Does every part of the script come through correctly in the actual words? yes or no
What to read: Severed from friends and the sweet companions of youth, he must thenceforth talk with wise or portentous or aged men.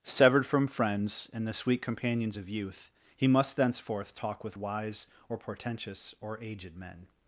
yes